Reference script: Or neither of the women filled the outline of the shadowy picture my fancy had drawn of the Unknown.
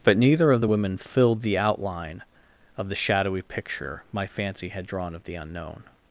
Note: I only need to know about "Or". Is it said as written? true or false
false